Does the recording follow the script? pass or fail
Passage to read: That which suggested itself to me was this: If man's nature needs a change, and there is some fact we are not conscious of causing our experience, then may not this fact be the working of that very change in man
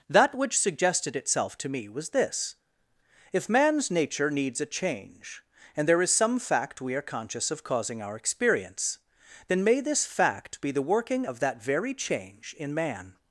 fail